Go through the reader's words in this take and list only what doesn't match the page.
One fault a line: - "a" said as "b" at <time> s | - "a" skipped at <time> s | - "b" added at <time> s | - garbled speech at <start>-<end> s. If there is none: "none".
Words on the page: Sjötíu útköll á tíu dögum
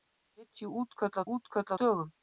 - "tíu" said as "útköll" at 1.3 s